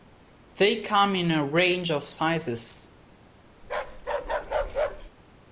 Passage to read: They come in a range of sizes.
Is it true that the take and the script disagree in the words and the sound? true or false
true